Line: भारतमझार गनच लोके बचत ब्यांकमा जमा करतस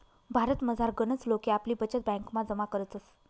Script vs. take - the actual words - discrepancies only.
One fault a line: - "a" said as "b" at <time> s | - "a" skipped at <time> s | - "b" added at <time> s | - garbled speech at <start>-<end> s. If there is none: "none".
- "आपली" added at 1.5 s